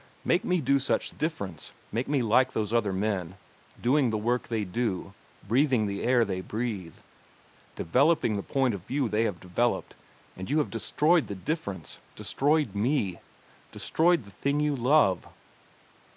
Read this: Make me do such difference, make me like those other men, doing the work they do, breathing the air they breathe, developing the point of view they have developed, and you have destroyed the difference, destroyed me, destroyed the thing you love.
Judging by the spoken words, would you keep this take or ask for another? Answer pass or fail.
pass